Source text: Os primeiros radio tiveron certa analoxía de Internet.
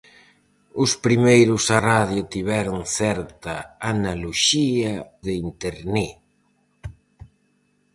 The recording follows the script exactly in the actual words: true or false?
true